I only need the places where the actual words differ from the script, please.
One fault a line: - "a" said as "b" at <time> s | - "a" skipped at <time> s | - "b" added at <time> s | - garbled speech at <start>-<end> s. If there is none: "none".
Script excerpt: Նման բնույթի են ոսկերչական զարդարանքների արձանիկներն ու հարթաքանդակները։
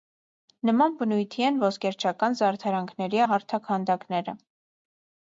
- "արձանիկներն" skipped at 3.2 s